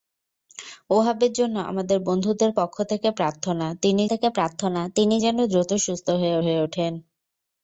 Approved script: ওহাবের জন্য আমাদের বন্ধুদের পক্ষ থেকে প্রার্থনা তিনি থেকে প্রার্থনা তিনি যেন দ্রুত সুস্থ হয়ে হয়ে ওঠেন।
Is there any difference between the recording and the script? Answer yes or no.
no